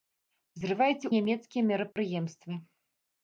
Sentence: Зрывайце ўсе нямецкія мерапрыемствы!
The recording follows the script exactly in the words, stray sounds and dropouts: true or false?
false